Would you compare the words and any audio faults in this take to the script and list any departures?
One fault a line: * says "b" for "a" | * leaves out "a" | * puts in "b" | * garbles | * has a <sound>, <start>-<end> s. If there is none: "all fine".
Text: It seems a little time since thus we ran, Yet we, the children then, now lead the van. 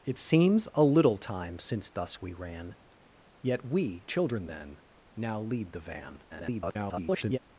* leaves out "the"
* garbles